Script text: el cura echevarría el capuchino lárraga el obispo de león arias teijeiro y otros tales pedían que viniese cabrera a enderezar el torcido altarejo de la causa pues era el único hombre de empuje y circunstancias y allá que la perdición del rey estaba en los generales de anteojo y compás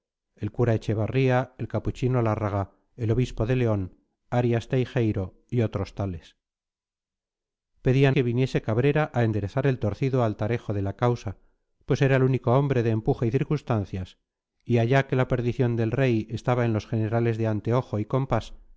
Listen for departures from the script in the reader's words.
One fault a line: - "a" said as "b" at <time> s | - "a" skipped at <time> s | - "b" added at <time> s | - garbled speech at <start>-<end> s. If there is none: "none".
none